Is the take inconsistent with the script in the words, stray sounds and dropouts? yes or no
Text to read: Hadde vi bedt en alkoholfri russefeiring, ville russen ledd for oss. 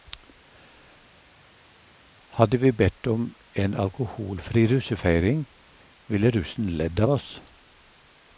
yes